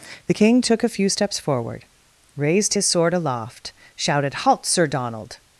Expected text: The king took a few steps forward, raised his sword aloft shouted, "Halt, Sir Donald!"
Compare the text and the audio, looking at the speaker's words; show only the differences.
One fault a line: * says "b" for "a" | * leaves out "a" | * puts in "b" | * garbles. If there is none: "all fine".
all fine